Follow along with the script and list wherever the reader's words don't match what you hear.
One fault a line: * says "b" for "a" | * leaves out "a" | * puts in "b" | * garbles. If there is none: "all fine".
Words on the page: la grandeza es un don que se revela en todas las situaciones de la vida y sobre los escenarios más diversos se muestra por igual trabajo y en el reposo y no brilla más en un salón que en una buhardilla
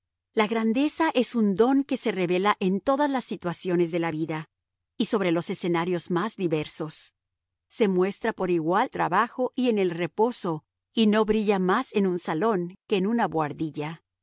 all fine